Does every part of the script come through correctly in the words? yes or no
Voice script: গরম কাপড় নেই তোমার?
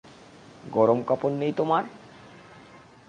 yes